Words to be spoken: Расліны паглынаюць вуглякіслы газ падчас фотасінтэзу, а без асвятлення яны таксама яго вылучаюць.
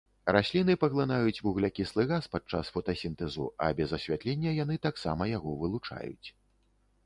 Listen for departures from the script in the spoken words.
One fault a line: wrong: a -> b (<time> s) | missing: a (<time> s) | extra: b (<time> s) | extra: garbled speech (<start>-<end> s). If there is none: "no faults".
no faults